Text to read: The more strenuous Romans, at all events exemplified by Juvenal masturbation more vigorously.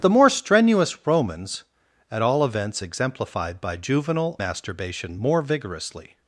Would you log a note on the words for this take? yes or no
no